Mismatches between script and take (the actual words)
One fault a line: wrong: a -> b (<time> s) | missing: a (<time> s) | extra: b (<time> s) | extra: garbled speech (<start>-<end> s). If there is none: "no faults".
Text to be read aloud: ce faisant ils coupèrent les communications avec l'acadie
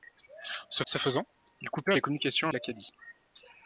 extra: ce (0.9 s)
missing: avec (2.5 s)